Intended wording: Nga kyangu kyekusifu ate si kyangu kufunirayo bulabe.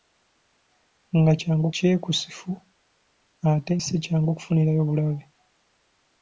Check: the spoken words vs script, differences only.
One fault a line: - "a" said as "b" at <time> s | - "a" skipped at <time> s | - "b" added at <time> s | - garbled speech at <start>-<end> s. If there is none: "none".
none